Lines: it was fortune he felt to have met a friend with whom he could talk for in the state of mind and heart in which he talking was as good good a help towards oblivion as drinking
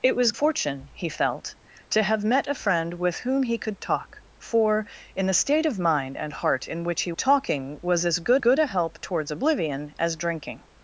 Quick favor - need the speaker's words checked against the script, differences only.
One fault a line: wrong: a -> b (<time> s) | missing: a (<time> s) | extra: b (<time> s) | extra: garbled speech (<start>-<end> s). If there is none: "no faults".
no faults